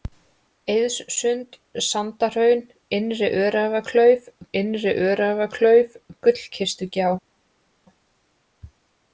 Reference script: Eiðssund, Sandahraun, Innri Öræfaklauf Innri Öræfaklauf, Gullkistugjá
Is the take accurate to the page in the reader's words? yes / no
yes